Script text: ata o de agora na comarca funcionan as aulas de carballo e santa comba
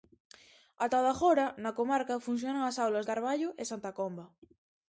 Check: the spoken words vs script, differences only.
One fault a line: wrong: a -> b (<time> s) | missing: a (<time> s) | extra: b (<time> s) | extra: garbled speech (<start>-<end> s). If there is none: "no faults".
missing: de (3.1 s)